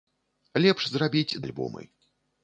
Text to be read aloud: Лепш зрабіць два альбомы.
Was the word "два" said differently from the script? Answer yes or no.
yes